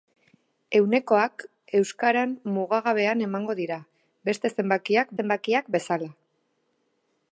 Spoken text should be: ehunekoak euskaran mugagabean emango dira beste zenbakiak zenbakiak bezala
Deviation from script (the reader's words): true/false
false